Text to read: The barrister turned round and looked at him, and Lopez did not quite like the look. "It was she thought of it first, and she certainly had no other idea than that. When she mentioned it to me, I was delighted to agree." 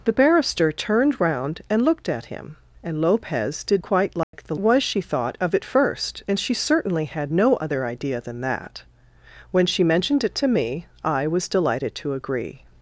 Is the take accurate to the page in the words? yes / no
no